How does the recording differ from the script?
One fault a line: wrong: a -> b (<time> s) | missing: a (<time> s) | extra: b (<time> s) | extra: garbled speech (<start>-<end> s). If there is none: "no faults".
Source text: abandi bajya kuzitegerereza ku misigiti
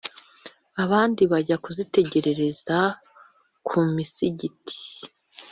no faults